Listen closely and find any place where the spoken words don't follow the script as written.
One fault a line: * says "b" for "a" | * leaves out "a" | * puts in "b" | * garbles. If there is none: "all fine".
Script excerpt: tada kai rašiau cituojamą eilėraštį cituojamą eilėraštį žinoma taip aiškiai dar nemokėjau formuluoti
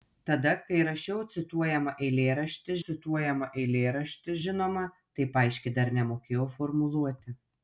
all fine